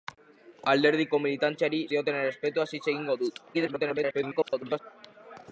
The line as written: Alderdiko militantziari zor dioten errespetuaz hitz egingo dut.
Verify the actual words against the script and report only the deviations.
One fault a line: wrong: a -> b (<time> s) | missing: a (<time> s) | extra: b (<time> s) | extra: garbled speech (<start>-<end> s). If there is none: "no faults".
missing: zor (1.8 s)
extra: garbled speech (3.5-4.8 s)